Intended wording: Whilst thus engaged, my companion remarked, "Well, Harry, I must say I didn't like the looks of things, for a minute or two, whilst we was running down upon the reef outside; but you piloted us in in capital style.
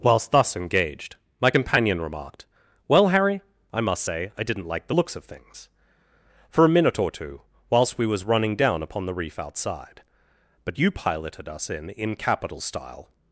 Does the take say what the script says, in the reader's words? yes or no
yes